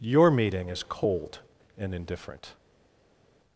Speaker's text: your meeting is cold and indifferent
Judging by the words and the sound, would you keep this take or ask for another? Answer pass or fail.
pass